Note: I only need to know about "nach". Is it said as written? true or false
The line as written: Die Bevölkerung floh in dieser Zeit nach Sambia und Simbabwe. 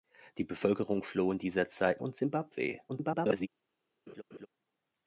false